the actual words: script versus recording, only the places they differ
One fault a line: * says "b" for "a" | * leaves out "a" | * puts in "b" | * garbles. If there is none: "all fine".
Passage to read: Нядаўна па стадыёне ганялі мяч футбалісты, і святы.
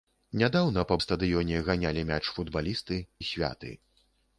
all fine